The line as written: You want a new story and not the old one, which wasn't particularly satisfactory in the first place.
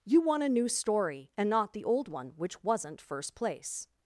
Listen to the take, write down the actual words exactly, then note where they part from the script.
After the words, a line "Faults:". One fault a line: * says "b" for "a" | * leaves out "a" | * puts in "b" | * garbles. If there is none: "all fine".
You want a new story and not the old one, which wasn't first place.
Faults:
* leaves out "particularly satisfactory in the"